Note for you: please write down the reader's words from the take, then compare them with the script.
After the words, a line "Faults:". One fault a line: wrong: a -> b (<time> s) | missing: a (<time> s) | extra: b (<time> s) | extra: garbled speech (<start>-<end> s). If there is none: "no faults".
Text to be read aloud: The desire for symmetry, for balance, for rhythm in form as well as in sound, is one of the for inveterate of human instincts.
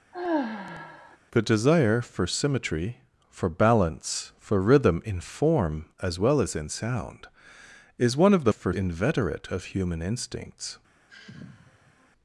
The desire for symmetry, for balance, for rhythm in form as well as in sound, is one of the for inveterate of human instincts.
Faults:
no faults